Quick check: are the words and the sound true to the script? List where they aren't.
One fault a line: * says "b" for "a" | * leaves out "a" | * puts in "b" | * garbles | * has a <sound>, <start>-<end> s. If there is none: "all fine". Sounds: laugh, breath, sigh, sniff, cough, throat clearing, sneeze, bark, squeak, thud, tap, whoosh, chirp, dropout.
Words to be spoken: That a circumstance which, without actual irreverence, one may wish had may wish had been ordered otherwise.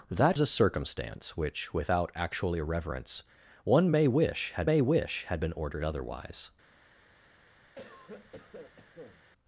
* has a cough, 7.7-9.2 s